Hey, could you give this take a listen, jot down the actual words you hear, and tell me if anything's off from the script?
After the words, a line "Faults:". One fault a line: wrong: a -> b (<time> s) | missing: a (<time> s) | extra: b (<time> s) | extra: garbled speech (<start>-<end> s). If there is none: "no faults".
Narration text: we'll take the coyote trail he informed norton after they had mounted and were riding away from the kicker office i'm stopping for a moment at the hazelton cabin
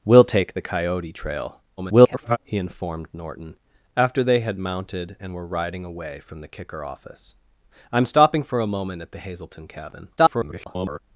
we'll take the coyote trail [garbled] he informed norton after they had mounted and were riding away from the kicker office i'm stopping for a moment at the hazelton cabin [garbled]
Faults:
extra: garbled speech (1.8-2.4 s)
extra: garbled speech (10.2-11.0 s)